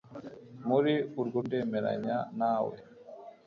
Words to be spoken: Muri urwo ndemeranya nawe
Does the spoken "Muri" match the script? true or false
true